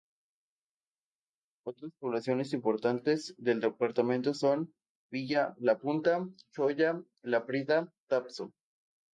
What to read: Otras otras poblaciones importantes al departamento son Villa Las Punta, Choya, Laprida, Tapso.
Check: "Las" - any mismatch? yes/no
yes